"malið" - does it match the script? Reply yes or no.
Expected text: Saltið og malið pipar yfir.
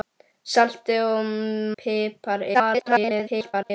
no